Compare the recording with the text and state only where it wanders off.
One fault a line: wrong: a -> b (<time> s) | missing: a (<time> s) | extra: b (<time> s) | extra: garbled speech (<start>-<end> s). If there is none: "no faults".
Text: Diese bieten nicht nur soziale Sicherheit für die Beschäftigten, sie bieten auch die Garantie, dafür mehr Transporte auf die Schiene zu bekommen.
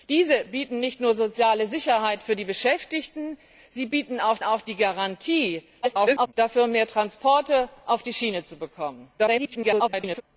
extra: auch (4.4 s)
extra: garbled speech (5.8-6.3 s)
extra: garbled speech (9.2-10.2 s)